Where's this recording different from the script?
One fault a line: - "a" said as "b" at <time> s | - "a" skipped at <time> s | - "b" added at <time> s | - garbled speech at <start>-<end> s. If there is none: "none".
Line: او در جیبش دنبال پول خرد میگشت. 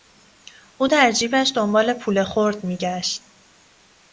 none